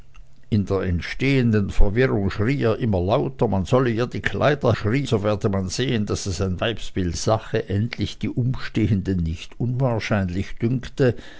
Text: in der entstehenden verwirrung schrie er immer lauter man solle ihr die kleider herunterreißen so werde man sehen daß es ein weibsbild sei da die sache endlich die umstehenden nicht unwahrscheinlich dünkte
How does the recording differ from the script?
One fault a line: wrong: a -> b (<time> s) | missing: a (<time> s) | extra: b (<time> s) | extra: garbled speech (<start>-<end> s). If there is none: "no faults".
wrong: herunterreißen -> schrie (4.7 s)
missing: sei da die (7.2 s)